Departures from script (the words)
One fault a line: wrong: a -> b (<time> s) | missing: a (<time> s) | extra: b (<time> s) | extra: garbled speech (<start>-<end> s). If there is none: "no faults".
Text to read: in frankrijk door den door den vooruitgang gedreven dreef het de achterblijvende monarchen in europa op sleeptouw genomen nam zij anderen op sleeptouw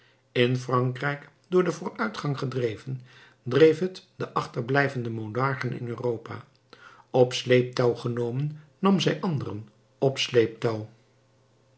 missing: door den (1.7 s)